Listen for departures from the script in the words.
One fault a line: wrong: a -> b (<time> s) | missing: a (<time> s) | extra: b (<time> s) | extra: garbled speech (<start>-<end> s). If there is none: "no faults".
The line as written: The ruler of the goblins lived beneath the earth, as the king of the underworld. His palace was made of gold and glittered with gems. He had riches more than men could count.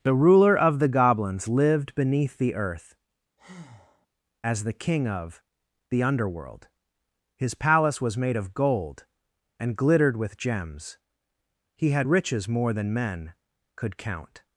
no faults